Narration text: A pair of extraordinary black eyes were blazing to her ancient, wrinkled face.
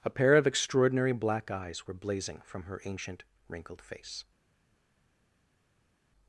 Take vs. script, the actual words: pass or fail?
fail